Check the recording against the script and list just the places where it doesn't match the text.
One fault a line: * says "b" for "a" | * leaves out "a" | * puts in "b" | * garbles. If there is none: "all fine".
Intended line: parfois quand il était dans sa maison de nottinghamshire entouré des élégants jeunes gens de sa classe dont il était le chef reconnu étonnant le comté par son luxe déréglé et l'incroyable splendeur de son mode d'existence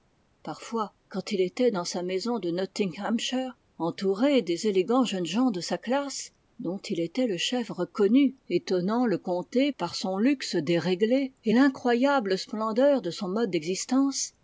all fine